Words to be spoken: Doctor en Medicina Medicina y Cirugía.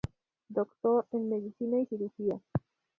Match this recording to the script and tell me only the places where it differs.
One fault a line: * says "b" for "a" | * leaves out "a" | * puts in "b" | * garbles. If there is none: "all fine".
* leaves out "Medicina"